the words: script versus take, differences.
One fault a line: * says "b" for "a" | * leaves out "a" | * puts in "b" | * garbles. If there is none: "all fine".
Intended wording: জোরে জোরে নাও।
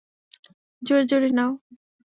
all fine